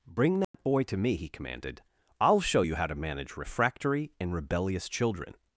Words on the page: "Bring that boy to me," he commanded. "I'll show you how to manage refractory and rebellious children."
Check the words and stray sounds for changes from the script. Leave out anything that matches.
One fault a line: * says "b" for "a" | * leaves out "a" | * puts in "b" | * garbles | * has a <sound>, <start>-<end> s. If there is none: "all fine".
* has a dropout, 0.4-0.5 s